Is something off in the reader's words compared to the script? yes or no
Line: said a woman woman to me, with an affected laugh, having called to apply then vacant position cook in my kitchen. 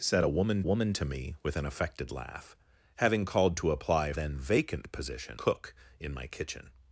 no